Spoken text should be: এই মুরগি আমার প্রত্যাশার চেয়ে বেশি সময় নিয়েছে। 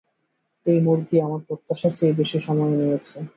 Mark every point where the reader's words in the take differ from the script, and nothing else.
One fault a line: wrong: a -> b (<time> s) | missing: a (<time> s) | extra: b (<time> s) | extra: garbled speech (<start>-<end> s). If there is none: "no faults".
no faults